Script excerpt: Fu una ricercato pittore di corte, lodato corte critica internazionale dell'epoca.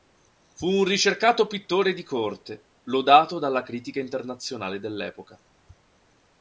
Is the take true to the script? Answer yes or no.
no